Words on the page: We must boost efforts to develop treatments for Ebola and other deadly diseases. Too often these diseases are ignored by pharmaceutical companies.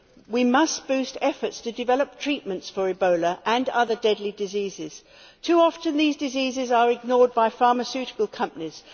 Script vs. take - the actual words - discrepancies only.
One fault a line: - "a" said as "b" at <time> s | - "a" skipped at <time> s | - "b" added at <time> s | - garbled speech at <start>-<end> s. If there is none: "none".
none